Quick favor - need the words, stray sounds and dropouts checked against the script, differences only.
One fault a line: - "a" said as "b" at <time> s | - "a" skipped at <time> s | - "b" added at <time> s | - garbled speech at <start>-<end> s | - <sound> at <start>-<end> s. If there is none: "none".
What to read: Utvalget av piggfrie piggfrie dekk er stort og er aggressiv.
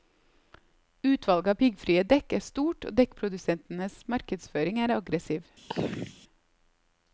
- "piggfrie" skipped at 2.0 s
- "dekkprodusentenes markedsføring" added at 3.0 s
- throat clearing at 5.7-6.1 s